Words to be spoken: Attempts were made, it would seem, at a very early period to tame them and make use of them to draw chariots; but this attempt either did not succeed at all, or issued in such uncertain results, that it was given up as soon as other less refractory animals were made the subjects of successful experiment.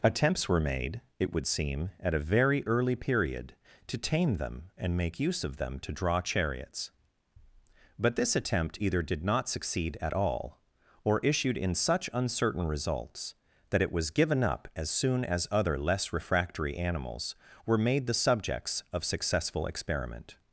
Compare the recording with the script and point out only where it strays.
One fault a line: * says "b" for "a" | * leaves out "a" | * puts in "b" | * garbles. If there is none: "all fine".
all fine